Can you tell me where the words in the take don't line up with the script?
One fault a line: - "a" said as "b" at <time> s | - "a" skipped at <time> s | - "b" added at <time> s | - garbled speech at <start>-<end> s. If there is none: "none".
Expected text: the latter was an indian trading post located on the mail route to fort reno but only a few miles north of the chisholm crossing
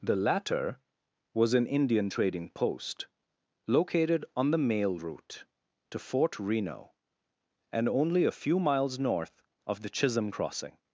- "but" said as "and" at 7.7 s